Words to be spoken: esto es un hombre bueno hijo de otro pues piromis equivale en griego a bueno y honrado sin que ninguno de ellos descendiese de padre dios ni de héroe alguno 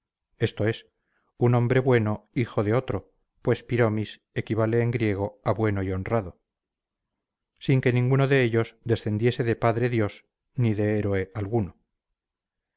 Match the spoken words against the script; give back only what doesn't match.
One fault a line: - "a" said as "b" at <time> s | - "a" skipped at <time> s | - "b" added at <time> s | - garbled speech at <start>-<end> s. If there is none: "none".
none